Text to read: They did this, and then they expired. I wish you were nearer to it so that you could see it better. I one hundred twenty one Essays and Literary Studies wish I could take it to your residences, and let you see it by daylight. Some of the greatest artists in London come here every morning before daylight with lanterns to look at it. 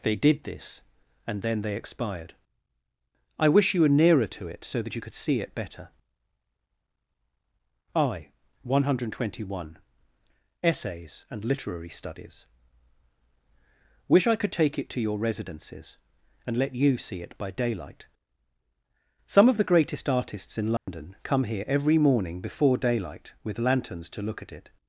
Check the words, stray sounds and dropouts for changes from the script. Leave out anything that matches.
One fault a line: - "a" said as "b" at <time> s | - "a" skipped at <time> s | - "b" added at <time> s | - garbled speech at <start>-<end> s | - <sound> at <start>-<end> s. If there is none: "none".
- dropout at 20.8-20.9 s